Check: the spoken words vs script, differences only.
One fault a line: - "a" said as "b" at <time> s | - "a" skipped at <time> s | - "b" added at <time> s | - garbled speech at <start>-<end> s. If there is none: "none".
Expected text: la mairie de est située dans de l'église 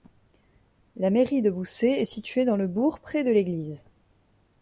- "boussay" added at 1.5 s
- "le bourg près" added at 2.5 s